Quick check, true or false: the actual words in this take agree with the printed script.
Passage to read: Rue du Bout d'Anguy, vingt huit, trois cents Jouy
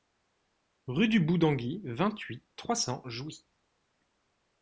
true